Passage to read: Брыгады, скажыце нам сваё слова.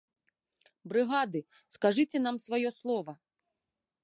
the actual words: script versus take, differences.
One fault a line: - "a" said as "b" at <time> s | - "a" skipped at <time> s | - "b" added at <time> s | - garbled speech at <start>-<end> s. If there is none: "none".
none